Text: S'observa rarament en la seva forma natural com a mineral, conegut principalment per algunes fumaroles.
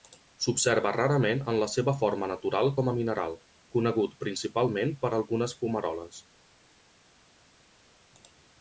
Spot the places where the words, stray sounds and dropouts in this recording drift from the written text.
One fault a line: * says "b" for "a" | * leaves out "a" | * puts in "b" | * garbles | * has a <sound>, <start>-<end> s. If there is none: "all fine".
all fine